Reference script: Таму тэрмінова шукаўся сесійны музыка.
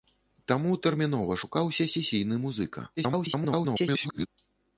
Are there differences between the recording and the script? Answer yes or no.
yes